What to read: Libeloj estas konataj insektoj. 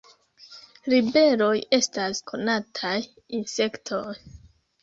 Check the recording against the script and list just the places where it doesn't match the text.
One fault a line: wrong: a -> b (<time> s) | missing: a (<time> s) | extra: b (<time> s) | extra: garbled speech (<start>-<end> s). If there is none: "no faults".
no faults